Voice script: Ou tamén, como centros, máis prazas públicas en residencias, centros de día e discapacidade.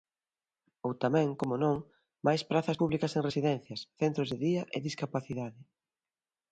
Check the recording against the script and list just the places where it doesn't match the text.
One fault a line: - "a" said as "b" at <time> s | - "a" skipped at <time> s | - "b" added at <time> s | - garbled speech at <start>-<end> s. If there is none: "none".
- "centros" said as "non" at 1.6 s